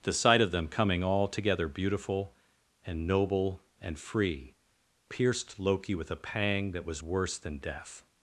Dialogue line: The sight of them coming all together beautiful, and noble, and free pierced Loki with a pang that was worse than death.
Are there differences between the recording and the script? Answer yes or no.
no